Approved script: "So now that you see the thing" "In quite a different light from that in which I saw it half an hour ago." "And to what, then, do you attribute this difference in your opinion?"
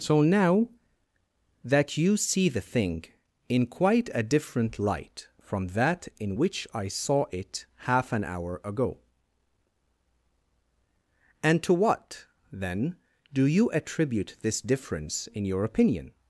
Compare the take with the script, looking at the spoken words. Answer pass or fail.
pass